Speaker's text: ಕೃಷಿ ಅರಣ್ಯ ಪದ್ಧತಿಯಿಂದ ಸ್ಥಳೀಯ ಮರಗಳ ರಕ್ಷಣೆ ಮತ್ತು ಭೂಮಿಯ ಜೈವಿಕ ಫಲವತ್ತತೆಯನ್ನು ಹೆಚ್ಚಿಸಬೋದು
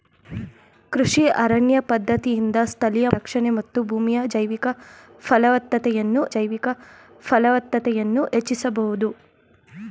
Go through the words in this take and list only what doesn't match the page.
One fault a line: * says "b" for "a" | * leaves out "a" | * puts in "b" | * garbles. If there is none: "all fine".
* leaves out "ಮರಗಳ"
* puts in "ಜೈವಿಕ ಫಲವತ್ತತೆಯನ್ನು"